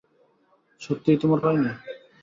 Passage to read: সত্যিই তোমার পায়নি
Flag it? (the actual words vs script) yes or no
no